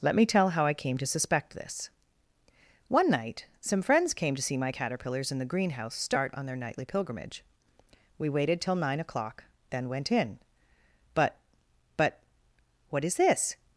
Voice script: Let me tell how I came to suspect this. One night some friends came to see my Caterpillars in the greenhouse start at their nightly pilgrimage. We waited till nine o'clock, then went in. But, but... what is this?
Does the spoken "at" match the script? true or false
false